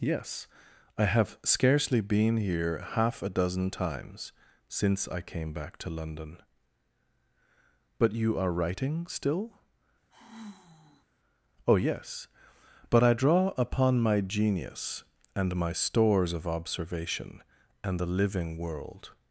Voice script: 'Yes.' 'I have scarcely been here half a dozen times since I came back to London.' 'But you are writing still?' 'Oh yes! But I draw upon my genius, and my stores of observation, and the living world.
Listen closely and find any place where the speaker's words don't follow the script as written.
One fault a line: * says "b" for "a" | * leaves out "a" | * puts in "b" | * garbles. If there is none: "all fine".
all fine